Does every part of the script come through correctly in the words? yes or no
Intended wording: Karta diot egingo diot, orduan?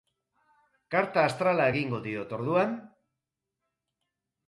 no